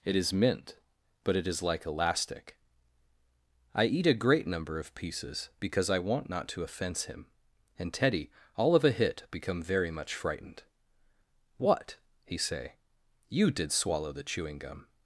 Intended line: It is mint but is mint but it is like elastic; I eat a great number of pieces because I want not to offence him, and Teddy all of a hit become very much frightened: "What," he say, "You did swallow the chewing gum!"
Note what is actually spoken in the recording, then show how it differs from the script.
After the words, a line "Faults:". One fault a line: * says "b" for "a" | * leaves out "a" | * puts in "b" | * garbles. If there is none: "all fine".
It is mint but it is like elastic; I eat a great number of pieces because I want not to offence him, and Teddy all of a hit become very much frightened: "What," he say, "You did swallow the chewing gum!"
Faults:
* leaves out "is mint but"